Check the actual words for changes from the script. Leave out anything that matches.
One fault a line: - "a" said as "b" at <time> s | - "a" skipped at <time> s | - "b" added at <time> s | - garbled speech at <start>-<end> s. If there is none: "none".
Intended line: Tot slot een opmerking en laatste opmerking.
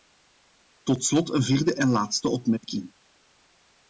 - "opmerking" said as "vierde" at 1.4 s